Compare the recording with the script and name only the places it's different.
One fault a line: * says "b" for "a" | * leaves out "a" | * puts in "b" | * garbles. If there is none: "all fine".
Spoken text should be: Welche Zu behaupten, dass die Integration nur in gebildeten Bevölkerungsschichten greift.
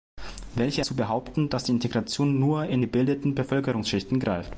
all fine